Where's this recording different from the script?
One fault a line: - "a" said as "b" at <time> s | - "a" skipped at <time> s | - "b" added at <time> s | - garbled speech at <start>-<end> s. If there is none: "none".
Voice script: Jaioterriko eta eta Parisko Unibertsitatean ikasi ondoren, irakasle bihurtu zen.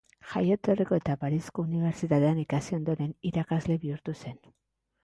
- "eta" skipped at 1.2 s